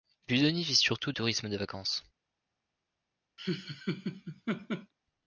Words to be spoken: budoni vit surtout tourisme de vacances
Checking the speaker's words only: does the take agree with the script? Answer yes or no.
yes